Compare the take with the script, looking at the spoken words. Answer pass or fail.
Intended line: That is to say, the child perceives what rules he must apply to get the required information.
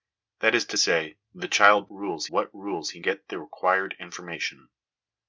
fail